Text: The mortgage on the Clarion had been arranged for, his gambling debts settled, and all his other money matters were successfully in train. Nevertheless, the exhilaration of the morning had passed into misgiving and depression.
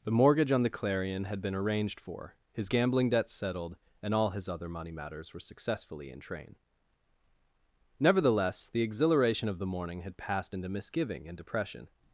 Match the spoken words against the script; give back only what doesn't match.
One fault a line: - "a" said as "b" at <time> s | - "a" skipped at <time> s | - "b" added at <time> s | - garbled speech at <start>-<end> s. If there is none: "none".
none